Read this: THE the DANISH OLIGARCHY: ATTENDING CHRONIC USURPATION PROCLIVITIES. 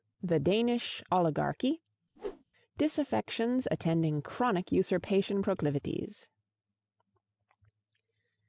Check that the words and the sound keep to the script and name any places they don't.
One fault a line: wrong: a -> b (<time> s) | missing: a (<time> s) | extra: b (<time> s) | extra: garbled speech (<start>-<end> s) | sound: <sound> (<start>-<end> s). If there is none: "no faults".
missing: the (0.4 s)
sound: whoosh (2.2-2.4 s)
extra: DISAFFECTIONS (2.8 s)